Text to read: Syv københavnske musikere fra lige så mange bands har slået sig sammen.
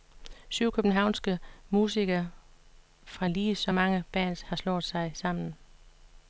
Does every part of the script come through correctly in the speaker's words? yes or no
yes